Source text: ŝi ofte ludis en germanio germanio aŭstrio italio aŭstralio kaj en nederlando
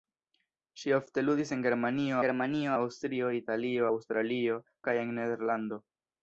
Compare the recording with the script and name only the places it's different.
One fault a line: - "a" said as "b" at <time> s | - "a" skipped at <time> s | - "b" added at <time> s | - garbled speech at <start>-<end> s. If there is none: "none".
none